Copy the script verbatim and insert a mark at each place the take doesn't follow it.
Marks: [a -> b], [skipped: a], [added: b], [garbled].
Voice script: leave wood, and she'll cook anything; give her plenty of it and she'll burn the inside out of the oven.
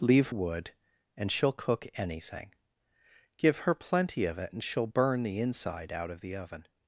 leave wood, and she'll cook anything; give her plenty of it and she'll burn the inside out of the oven.